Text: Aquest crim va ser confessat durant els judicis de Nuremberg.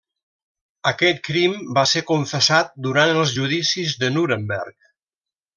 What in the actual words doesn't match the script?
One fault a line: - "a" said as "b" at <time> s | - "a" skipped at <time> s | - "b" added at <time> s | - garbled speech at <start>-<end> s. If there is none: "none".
none